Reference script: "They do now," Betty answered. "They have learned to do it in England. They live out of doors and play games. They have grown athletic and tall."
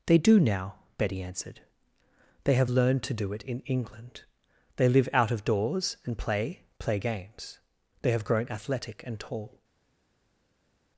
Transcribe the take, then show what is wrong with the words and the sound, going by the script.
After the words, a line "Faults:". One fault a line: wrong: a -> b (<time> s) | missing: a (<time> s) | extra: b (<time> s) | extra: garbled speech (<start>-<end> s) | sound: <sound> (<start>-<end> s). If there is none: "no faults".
"They do now," Betty answered. "They have learned to do it in England. They live out of doors and play play games. They have grown athletic and tall."
Faults:
extra: play (6.8 s)